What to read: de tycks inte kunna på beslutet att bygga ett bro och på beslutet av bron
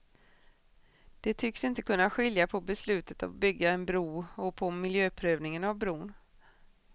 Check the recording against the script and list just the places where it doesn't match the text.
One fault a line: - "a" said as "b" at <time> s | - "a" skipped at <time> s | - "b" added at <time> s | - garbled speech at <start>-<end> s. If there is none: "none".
- "skilja" added at 2.1 s
- "ett" said as "en" at 3.7 s
- "beslutet" said as "miljöprövningen" at 4.7 s